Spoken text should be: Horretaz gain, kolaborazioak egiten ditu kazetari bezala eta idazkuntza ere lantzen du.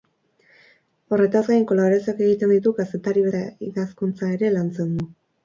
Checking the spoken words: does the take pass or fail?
fail